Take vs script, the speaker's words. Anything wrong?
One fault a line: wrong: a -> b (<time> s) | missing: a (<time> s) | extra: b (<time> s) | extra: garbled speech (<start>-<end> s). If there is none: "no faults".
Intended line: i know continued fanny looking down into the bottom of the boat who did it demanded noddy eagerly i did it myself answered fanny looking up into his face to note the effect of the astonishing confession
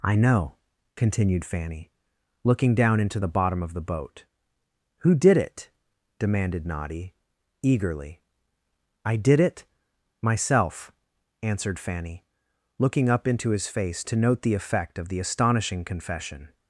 no faults